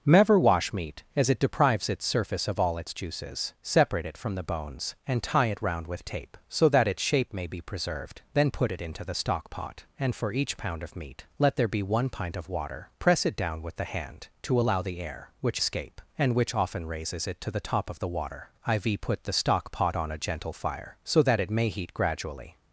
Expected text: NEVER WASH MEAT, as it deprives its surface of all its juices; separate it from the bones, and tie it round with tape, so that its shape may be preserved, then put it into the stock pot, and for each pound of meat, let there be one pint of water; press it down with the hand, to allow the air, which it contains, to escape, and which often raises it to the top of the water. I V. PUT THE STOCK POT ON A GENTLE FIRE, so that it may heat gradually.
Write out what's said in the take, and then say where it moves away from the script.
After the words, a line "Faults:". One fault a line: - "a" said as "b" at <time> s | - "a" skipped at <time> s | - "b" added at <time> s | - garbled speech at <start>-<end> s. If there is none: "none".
NEVER WASH MEAT, as it deprives its surface of all its juices; separate it from the bones, and tie it round with tape, so that its shape may be preserved, then put it into the stock pot, and for each pound of meat, let there be one pint of water; press it down with the hand, to allow the air, which escape, and which often raises it to the top of the water. I V. PUT THE STOCK POT ON A GENTLE FIRE, so that it may heat gradually.
Faults:
- "it contains to" skipped at 15.6 s